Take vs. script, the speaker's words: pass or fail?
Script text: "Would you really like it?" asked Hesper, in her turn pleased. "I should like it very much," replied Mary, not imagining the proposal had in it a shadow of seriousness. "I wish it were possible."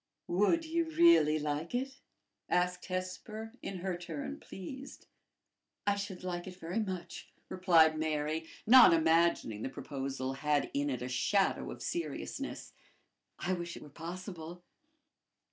pass